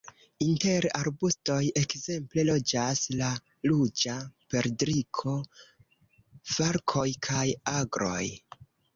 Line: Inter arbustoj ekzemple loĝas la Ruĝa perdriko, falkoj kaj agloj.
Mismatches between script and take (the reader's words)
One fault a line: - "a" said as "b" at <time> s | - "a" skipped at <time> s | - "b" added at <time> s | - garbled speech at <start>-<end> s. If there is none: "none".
none